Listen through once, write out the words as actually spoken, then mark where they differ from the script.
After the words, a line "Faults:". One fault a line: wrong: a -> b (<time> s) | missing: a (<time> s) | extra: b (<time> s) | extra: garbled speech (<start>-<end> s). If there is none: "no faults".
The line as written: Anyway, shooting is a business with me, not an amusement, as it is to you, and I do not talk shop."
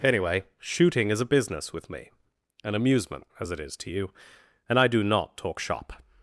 Anyway, shooting is a business with me, an amusement, as it is to you, and I do not talk shop."
Faults:
missing: not (2.1 s)